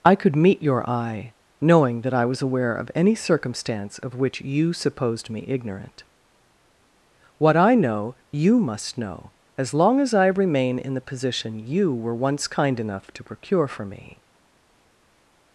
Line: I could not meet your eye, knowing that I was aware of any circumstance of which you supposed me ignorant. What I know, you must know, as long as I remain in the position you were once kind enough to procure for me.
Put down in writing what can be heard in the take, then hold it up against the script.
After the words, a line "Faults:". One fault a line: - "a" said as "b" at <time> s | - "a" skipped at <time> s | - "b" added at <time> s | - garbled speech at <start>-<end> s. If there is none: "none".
I could meet your eye, knowing that I was aware of any circumstance of which you supposed me ignorant. What I know, you must know, as long as I remain in the position you were once kind enough to procure for me.
Faults:
- "not" skipped at 0.3 s